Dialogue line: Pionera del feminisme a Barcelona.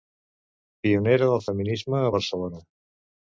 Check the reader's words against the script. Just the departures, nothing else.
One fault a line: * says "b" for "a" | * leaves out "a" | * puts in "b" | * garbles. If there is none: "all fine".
all fine